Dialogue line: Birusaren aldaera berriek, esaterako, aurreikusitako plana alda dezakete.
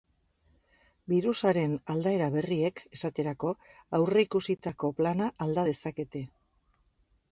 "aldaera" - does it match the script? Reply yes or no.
yes